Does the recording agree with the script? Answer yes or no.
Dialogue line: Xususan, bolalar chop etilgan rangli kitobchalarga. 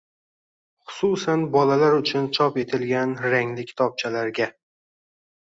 no